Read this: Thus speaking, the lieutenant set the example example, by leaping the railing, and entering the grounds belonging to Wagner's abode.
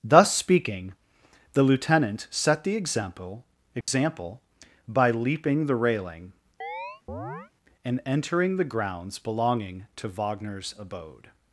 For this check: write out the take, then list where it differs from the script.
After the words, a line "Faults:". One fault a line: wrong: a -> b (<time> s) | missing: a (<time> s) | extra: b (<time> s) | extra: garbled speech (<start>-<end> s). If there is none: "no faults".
Thus speaking, the lieutenant set the example example, by leaping the railing, and entering the grounds belonging to Wagner's abode.
Faults:
no faults